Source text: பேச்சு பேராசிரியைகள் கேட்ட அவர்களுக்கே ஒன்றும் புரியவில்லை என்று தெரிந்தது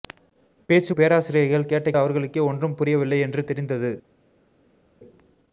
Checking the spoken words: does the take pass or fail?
pass